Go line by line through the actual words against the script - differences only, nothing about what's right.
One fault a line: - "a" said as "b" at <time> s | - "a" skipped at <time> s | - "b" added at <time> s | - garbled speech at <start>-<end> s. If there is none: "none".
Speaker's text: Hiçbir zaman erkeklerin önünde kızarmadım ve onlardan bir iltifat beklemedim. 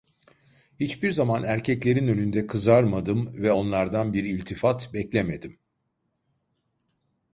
none